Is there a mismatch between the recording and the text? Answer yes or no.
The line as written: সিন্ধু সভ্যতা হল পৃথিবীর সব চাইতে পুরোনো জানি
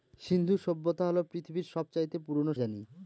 no